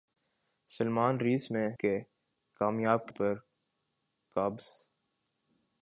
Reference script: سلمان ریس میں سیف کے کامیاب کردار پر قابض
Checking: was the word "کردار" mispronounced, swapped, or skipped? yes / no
yes